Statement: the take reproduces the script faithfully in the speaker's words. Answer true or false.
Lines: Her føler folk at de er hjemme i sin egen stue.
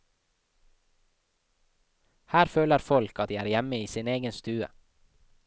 true